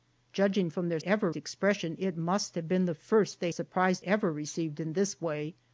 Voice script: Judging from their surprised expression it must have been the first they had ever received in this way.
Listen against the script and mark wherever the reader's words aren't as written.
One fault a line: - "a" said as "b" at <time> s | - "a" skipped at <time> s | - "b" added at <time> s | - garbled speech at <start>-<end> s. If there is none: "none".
- "surprised" said as "ever" at 1.0 s
- "had" said as "surprised" at 3.5 s